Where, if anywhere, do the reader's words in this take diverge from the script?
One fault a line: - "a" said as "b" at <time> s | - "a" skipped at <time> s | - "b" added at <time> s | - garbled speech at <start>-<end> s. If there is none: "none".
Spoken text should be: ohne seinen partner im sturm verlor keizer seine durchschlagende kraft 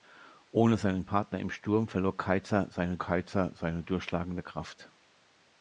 - "keizer seine" added at 3.0 s